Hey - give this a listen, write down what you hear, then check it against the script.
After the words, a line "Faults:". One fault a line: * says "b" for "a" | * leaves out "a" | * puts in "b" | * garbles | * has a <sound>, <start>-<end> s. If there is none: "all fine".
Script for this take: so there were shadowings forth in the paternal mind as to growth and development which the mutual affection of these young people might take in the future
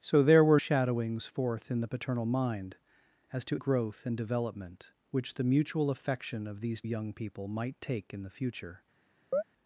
so there were shadowings forth in the paternal mind as to growth and development which the mutual affection of these young people might take in the future
Faults:
* has a chirp, 9.3-9.4 s